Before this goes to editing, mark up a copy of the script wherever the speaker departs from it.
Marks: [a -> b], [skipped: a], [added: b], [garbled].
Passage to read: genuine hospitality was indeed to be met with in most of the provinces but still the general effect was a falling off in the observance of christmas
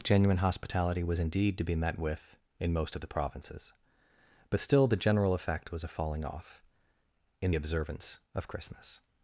genuine hospitality was indeed to be met with in most of the provinces but still the general effect was a falling off in [skipped: the] observance of christmas